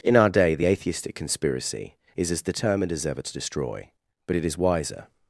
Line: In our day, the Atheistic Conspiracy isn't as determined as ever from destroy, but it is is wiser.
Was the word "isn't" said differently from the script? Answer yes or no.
yes